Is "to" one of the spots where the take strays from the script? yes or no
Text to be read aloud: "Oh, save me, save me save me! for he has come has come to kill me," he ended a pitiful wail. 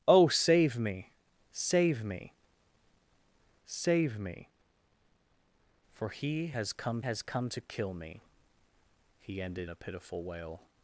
no